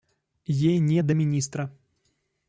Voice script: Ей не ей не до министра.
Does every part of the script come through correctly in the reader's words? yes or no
no